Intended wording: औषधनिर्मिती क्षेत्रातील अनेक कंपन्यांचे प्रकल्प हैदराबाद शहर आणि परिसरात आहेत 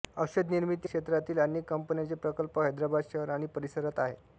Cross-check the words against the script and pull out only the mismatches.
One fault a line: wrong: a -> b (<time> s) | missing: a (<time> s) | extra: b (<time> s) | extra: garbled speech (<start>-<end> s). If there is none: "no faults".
no faults